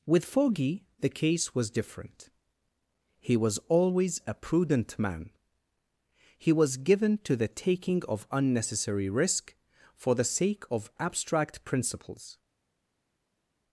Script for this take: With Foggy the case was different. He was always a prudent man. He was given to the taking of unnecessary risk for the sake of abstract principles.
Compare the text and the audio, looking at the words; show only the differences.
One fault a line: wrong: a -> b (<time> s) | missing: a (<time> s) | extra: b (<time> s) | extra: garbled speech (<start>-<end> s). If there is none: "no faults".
no faults